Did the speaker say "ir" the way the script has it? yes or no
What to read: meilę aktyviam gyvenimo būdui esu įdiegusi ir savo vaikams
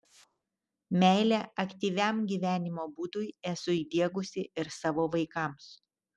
yes